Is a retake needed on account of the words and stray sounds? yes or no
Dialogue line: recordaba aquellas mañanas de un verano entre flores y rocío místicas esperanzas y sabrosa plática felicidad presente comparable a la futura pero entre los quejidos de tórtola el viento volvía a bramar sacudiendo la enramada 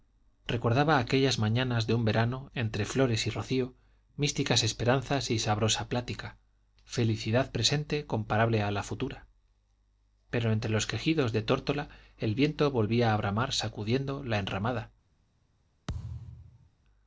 yes